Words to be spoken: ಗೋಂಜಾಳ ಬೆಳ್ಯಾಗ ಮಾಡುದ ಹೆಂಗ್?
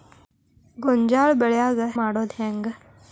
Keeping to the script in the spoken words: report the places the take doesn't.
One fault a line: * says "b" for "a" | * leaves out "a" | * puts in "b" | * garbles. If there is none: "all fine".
all fine